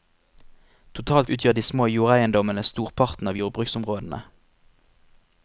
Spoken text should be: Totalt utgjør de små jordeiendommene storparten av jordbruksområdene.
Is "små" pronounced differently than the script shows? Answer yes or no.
no